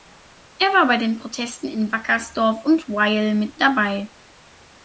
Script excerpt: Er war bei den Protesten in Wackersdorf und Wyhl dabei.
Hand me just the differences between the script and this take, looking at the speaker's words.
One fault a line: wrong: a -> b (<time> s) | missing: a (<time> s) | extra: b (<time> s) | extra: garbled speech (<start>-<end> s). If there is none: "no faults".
extra: mit (3.4 s)